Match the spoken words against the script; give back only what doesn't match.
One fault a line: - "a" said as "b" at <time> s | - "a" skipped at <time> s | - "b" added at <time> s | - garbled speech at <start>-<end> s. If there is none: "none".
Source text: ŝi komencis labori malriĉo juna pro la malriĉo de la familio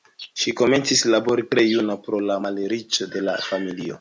- "malriĉo" said as "tre" at 1.5 s